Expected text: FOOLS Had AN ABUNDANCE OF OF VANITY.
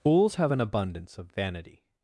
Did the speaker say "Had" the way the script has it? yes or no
no